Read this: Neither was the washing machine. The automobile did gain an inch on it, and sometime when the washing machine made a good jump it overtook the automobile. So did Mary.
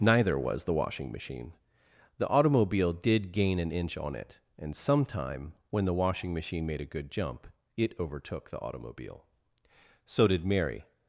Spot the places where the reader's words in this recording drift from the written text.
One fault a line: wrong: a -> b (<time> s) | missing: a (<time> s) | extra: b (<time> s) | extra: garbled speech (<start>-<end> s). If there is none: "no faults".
no faults